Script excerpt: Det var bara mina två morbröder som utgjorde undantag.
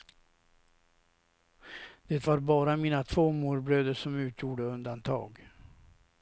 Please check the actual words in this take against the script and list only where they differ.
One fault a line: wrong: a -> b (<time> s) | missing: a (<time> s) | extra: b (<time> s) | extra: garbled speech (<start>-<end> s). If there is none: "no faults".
no faults